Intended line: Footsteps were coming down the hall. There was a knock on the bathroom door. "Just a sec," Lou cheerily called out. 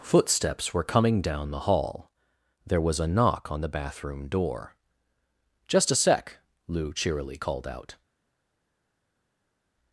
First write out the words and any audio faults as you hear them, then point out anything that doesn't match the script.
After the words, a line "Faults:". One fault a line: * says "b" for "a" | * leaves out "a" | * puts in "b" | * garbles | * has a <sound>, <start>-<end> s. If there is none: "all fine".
Footsteps were coming down the hall. There was a knock on the bathroom door. "Just a sec," Lou cheerily called out.
Faults:
all fine